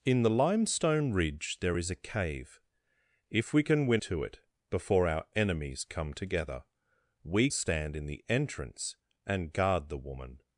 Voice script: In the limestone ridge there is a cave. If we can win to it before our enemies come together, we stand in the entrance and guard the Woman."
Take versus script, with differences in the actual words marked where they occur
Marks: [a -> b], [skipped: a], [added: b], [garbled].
In the limestone ridge there is a cave. If we can win to it before our enemies come together, we stand in the entrance and guard the Woman."